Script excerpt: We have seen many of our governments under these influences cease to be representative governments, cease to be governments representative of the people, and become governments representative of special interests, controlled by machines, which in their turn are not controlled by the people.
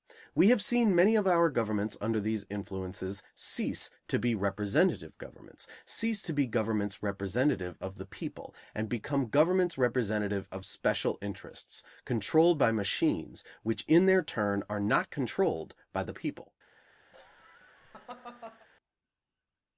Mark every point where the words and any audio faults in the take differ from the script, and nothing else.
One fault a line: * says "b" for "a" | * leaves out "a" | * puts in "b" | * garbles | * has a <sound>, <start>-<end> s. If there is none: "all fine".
* has a laugh, 17.1-18.7 s